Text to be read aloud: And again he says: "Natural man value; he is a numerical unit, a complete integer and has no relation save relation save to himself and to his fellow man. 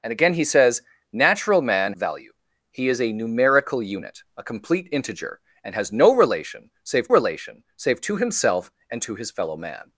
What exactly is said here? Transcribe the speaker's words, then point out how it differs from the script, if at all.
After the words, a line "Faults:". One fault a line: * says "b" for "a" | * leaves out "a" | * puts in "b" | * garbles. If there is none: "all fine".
And again he says: "Natural man value; he is a numerical unit, a complete integer and has no relation save relation save to himself and to his fellow man.
Faults:
all fine